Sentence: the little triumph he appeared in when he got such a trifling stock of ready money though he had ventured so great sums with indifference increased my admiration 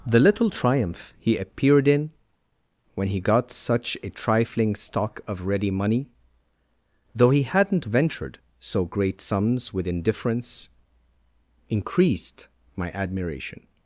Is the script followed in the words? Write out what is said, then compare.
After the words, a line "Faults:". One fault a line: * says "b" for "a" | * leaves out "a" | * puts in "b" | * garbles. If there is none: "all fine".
the little triumph he appeared in when he got such a trifling stock of ready money though he hadn't ventured so great sums with indifference increased my admiration
Faults:
* says "hadn't" for "had"